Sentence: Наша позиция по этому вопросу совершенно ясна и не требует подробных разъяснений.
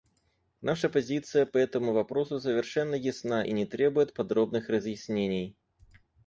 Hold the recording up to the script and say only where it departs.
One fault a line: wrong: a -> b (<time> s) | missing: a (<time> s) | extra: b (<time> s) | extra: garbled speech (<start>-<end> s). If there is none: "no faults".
no faults